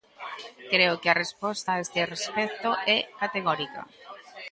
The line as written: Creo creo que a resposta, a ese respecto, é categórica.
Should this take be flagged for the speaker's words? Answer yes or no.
yes